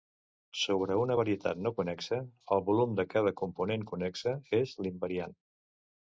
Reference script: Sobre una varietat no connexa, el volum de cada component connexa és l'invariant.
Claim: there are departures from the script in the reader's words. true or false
false